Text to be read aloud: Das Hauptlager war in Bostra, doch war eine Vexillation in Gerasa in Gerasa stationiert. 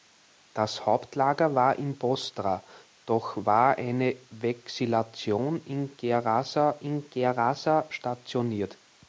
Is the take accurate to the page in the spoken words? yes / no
yes